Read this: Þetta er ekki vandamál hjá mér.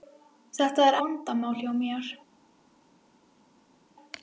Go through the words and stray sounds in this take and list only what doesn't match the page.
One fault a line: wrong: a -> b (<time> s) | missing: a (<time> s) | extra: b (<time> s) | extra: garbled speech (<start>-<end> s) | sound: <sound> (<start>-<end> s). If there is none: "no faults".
missing: ekki (1.0 s)